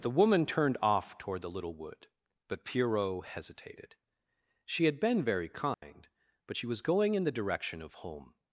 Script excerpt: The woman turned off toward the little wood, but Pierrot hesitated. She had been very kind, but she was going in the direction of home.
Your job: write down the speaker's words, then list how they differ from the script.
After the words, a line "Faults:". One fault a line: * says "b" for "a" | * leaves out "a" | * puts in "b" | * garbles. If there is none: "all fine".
The woman turned off toward the little wood, but Pierrot hesitated. She had been very kind, but she was going in the direction of home.
Faults:
all fine